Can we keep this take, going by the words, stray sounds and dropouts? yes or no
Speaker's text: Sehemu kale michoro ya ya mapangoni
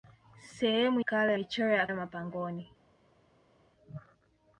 yes